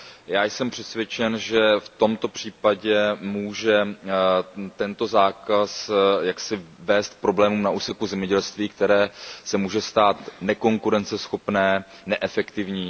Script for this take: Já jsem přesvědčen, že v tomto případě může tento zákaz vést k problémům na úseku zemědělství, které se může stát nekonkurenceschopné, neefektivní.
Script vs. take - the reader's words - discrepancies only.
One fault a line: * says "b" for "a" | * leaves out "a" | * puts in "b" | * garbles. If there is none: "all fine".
all fine